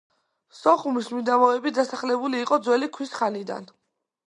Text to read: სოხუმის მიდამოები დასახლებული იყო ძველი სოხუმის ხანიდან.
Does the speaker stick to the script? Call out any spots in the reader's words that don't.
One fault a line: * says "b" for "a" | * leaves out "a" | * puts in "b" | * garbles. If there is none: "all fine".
* says "ქვის" for "სოხუმის"